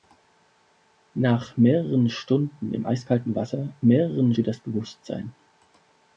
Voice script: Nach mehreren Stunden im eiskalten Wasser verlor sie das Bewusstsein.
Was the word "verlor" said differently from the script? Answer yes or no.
yes